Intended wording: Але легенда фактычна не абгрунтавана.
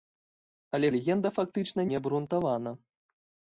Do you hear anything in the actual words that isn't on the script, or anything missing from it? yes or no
no